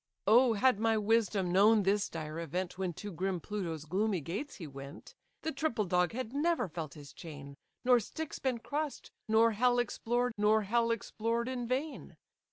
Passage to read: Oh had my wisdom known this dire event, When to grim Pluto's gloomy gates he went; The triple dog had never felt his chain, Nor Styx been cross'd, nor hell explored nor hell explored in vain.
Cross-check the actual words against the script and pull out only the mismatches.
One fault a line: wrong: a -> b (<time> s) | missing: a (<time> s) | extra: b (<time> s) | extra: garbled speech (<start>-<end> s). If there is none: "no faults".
no faults